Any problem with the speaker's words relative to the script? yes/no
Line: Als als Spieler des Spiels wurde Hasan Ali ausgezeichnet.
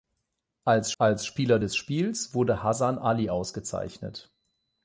no